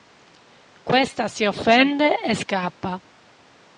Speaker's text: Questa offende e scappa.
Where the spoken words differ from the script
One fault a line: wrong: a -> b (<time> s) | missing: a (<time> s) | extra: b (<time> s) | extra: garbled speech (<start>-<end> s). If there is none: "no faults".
extra: si (1.3 s)